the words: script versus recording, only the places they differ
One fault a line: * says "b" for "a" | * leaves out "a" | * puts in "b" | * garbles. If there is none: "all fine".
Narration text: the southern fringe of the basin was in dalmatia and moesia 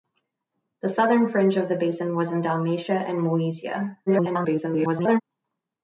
* garbles